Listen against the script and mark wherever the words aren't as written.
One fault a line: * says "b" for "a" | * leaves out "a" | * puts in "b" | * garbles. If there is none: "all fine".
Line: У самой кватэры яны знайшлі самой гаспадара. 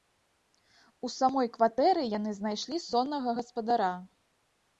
* says "соннага" for "самой"